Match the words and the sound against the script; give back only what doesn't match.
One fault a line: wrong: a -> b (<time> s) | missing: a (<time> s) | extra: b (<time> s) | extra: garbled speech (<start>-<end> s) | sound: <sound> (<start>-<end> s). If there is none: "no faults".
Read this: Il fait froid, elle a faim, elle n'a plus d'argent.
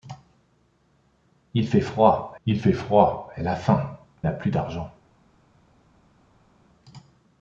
extra: il fait froid (2.4 s)
missing: elle (3.9 s)